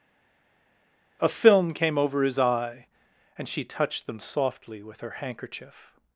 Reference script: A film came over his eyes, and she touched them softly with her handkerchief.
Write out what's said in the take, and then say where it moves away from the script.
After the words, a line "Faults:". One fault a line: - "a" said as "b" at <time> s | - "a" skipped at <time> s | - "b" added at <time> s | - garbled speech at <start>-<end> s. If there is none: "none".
A film came over his eye, and she touched them softly with her handkerchief.
Faults:
- "eyes" said as "eye" at 2.4 s